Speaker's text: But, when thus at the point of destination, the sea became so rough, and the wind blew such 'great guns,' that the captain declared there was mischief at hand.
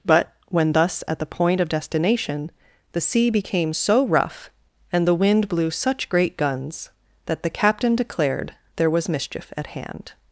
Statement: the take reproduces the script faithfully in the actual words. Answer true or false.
true